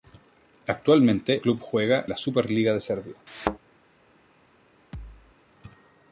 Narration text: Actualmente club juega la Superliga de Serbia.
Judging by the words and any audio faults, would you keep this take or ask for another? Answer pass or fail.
fail